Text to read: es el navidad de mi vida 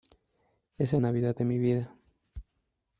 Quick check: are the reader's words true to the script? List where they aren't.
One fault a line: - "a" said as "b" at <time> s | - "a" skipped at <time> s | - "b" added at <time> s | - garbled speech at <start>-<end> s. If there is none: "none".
none